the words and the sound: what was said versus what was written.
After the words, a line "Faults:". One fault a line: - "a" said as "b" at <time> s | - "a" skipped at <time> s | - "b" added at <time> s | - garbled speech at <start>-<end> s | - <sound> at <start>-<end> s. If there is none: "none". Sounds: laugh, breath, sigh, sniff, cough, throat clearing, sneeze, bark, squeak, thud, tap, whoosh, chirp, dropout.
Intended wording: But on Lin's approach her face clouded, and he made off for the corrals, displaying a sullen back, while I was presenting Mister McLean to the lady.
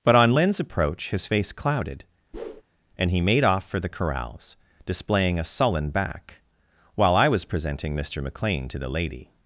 But on Lin's approach his face clouded, and he made off for the corrals, displaying a sullen back, while I was presenting Mister McLean to the lady.
Faults:
- "her" said as "his" at 1.1 s
- whoosh at 2.3-2.6 s